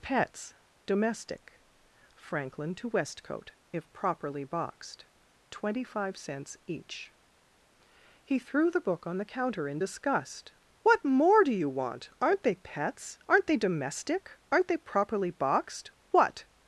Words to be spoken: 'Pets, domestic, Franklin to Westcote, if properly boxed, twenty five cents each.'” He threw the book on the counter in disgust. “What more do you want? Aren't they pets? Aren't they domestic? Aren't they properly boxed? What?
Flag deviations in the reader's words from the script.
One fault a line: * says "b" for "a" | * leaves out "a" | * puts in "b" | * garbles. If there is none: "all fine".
all fine